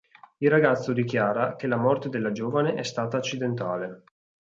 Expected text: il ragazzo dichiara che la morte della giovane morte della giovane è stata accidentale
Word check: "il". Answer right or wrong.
right